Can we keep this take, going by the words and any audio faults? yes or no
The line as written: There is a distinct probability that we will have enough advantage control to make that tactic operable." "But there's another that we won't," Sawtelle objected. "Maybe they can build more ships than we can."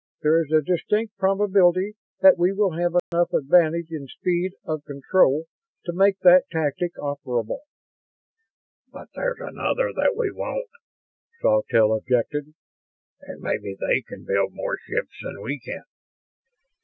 no